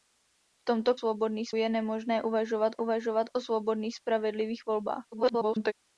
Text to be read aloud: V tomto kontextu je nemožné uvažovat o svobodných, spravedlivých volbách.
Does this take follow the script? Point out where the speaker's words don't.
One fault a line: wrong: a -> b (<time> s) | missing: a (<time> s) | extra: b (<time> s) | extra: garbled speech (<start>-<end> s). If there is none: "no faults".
wrong: kontextu -> svobodných (0.9 s)
extra: uvažovat (2.8 s)
extra: garbled speech (5.1-5.7 s)